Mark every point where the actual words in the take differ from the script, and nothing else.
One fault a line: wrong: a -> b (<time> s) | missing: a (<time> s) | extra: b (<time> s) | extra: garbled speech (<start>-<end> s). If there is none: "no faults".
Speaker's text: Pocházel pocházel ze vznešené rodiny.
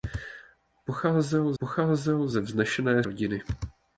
no faults